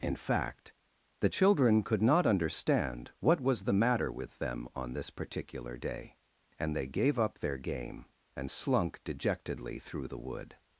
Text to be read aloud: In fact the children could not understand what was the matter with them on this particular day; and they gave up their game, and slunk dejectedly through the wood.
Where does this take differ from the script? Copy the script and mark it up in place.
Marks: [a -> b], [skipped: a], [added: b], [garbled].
In fact the children could not understand what was the matter with them on this particular day; and they gave up their game, and slunk dejectedly through the wood.